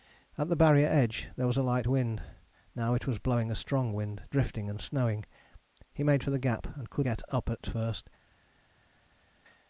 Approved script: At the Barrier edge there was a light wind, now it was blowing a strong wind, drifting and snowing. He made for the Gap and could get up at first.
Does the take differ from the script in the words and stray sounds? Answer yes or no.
no